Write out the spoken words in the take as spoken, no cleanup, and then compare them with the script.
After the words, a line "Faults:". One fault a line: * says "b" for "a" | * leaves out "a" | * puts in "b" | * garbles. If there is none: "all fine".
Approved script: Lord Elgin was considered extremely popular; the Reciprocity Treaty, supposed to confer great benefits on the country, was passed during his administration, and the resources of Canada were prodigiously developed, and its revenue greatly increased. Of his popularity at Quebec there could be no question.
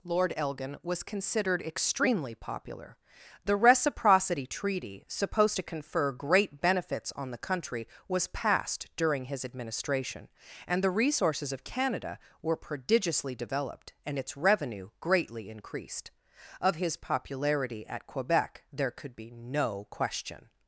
Lord Elgin was considered extremely popular; the Reciprocity Treaty, supposed to confer great benefits on the country, was passed during his administration, and the resources of Canada were prodigiously developed, and its revenue greatly increased. Of his popularity at Quebec there could be no question.
Faults:
all fine